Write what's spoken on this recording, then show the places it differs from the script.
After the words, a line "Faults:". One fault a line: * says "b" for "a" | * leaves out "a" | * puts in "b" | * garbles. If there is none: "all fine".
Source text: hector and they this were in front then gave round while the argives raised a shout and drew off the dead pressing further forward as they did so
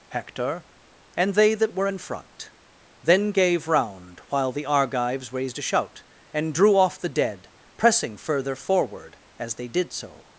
hector and they that were in front then gave round while the argives raised a shout and drew off the dead pressing further forward as they did so
Faults:
* says "that" for "this"